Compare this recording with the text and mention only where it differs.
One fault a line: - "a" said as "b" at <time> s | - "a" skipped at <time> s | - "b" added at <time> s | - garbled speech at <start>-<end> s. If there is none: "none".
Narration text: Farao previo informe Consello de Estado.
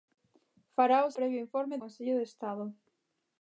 none